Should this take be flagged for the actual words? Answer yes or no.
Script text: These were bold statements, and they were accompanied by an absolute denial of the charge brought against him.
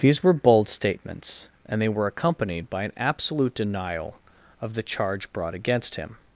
no